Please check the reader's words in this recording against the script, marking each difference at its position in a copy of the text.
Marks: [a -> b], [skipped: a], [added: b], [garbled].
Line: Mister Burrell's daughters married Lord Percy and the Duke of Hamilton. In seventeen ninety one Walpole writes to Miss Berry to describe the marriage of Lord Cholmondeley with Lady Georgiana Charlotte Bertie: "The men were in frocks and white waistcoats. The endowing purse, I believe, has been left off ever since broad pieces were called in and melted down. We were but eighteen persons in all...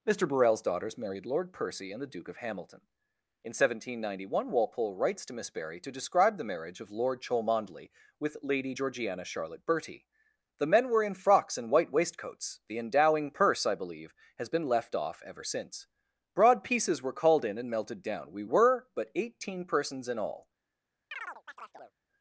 Mister Burrell's daughters married Lord Percy and the Duke of Hamilton. In seventeen ninety one Walpole writes to Miss Berry to describe the marriage of Lord Cholmondeley with Lady Georgiana Charlotte Bertie: "The men were in frocks and white waistcoats. The endowing purse, I believe, has been left off ever since broad pieces were called in and melted down. We were but eighteen persons in all...